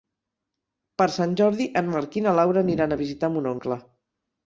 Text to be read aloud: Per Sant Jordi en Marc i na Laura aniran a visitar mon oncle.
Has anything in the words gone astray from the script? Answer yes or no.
no